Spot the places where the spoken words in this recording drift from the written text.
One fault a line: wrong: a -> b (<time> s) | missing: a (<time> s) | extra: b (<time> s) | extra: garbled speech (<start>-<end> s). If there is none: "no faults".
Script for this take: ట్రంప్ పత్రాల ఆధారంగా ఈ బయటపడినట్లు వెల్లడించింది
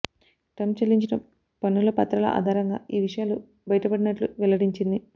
extra: చెల్లించిన పన్నుల (0.8 s)
extra: విషయాలు (3.0 s)